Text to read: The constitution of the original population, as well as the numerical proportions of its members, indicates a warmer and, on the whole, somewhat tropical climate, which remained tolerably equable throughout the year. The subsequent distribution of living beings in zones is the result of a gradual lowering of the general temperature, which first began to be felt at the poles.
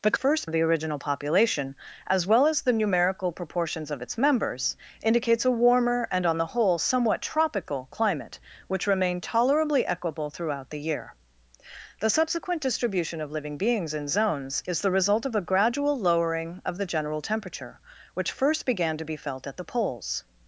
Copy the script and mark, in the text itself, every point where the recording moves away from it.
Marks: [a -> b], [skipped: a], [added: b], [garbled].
The [constitution -> first] of the original population, as well as the numerical proportions of its members, indicates a warmer and, on the whole, somewhat tropical climate, which remained tolerably equable throughout the year. The subsequent distribution of living beings in zones is the result of a gradual lowering of the general temperature, which first began to be felt at the poles.